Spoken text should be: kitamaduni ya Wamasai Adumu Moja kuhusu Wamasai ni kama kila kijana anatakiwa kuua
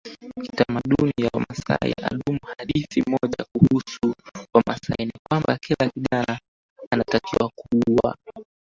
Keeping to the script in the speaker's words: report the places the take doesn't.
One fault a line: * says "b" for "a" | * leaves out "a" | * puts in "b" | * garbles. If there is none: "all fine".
* puts in "Hadithi"
* says "kwamba" for "kama"